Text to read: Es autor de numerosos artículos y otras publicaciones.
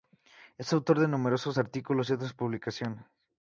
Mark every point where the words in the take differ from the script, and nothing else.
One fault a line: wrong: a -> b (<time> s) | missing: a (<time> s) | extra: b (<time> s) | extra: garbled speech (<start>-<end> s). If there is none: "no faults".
no faults